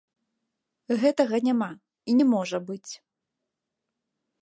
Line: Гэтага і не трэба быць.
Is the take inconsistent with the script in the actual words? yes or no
yes